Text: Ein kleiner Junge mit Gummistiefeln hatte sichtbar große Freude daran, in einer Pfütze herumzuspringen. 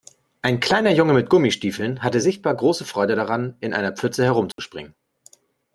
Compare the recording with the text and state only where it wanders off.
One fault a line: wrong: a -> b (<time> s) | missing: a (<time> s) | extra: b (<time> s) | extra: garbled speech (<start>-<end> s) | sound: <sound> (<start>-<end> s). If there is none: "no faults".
sound: dropout (4.5-4.6 s)